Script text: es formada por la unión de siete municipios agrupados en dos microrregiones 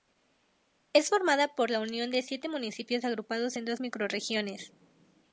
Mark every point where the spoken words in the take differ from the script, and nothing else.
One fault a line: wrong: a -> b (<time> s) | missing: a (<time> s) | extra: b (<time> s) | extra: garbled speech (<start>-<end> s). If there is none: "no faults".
no faults